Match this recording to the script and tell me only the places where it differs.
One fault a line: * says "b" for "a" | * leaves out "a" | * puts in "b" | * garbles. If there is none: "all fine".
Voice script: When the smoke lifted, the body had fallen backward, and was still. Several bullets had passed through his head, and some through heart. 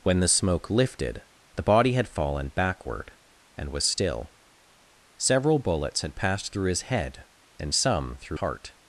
all fine